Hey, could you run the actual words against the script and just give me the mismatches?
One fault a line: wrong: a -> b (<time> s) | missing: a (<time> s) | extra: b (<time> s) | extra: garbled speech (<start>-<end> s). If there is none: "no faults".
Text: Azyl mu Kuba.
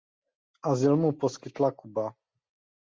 extra: poskytla (1.2 s)